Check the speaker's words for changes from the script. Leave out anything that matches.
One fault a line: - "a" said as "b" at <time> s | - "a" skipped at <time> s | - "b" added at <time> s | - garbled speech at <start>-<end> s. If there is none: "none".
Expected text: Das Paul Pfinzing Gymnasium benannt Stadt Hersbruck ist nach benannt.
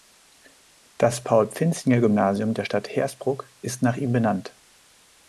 - "benannt" said as "der" at 2.5 s
- "ihm" added at 4.0 s